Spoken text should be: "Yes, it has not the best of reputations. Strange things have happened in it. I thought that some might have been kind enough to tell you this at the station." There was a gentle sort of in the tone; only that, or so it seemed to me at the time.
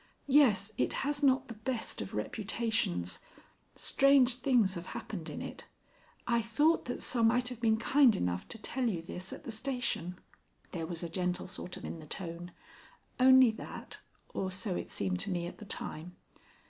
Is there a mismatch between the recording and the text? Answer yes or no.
no